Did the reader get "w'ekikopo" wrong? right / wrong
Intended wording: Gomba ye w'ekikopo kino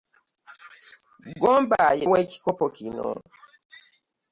right